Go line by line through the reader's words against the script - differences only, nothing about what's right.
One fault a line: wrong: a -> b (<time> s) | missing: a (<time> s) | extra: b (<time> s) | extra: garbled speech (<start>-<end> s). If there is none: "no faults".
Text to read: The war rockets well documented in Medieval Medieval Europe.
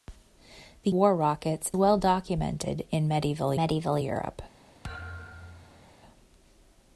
no faults